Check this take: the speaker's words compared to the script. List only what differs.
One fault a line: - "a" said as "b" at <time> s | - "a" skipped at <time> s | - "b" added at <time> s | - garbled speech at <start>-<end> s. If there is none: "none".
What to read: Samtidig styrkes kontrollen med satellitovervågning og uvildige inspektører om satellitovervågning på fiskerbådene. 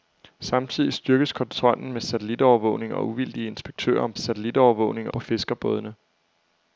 none